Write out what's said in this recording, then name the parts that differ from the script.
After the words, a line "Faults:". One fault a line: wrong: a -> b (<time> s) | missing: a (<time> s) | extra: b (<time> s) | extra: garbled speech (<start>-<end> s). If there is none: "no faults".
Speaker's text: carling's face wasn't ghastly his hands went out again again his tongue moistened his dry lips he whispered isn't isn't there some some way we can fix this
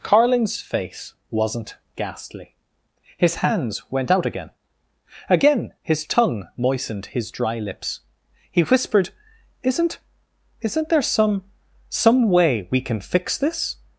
carling's face wasn't ghastly his hands went out again again his tongue moistened his dry lips he whispered isn't isn't there some some way we can fix this
Faults:
no faults